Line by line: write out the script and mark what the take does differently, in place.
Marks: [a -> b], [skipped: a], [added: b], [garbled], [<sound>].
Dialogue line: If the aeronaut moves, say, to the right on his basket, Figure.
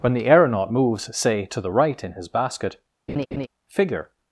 [If -> When] the aeronaut moves, say, to the right [on -> in] his basket, [laugh] Figure.